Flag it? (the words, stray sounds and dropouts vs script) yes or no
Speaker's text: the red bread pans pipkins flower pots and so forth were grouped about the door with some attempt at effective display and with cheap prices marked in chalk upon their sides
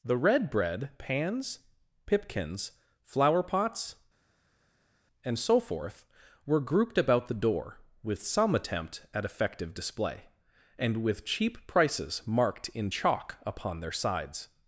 no